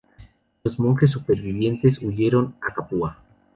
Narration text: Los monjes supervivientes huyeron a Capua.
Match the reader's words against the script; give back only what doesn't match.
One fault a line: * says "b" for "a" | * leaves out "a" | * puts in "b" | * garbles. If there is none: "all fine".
all fine